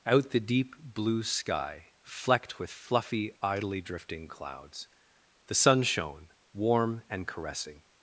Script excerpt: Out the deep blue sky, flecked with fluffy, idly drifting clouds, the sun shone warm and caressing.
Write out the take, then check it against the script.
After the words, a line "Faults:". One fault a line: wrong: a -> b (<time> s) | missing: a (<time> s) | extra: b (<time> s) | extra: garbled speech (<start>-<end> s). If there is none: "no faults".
Out the deep blue sky, flecked with fluffy, idly drifting clouds, the sun shone warm and caressing.
Faults:
no faults